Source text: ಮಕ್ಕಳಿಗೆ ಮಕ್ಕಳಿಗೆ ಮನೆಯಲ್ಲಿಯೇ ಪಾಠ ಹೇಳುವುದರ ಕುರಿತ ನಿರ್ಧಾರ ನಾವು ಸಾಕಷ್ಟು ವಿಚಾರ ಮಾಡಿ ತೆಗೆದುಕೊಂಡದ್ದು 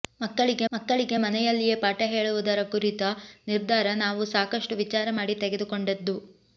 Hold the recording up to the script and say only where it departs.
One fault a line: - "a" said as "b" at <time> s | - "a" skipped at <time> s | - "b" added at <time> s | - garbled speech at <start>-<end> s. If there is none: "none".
none